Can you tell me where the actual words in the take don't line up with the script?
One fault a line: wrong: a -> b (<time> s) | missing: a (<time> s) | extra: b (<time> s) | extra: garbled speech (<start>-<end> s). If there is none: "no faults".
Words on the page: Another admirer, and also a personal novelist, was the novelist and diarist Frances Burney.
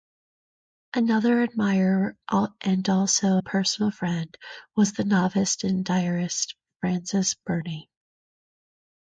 wrong: novelist -> friend (3.9 s)